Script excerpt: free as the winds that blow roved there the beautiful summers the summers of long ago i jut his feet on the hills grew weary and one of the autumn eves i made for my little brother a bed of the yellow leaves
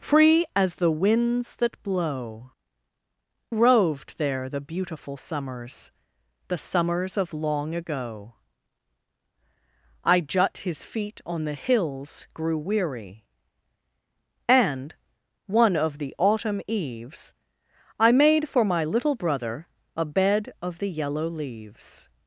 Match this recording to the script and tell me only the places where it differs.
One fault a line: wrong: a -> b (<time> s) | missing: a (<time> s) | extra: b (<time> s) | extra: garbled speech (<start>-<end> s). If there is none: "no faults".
no faults